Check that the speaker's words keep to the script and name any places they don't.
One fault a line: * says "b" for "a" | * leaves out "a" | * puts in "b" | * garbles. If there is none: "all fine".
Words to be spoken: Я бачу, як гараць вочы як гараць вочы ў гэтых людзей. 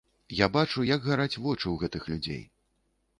* leaves out "як гараць вочы"